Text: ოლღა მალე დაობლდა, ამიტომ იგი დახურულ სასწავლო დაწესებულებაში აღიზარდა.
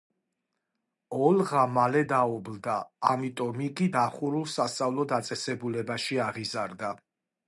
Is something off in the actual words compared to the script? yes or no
no